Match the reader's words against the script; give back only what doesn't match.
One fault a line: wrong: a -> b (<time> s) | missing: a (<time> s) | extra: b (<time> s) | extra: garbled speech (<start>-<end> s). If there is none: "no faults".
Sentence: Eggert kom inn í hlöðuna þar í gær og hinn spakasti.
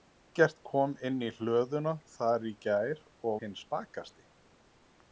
no faults